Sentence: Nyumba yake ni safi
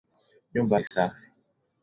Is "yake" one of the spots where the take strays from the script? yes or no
yes